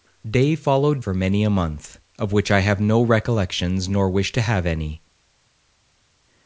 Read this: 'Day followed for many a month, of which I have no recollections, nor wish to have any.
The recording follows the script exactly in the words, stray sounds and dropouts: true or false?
true